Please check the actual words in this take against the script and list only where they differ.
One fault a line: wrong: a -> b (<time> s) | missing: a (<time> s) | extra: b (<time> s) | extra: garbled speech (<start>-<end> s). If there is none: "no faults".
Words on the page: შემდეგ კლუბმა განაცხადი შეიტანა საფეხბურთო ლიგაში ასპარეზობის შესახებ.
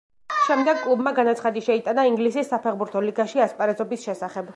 extra: ინგლისის (2.1 s)